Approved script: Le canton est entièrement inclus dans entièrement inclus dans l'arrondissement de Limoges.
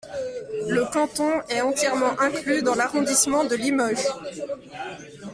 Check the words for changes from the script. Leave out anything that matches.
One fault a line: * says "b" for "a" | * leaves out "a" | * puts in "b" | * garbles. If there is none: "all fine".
* leaves out "entièrement inclus dans"